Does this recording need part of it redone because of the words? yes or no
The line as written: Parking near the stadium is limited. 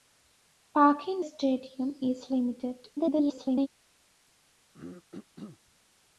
yes